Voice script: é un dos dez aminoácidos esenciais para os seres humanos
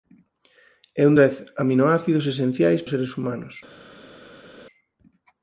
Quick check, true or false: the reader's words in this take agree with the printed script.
false